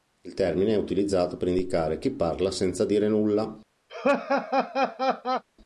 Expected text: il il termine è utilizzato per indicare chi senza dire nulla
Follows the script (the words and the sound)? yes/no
no